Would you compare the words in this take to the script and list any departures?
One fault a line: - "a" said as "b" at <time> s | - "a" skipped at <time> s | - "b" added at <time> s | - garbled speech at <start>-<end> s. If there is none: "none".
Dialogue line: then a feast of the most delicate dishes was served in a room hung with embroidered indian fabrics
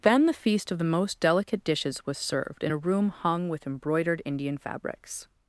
- "a" said as "the" at 0.2 s